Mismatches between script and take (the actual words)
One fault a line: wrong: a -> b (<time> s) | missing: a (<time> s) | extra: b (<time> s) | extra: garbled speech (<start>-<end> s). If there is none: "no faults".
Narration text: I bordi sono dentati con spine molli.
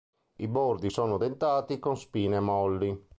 no faults